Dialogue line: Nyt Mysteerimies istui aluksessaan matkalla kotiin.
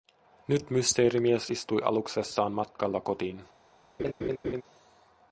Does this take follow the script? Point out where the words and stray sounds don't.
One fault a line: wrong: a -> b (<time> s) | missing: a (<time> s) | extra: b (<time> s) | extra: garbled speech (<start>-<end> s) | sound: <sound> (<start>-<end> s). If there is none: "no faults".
sound: laugh (4.0-4.6 s)